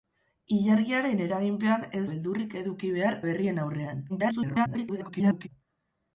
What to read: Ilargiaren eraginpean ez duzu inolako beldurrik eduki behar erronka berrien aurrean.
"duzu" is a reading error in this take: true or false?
true